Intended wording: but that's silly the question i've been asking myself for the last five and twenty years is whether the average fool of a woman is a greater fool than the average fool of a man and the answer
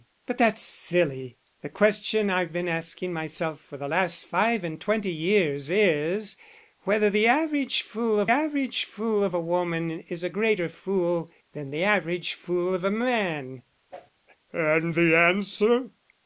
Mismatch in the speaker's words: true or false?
true